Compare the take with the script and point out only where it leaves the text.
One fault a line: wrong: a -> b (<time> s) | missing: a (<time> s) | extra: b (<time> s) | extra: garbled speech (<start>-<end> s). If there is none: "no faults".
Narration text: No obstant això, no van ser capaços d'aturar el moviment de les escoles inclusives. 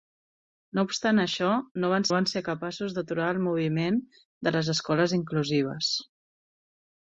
extra: van (2.1 s)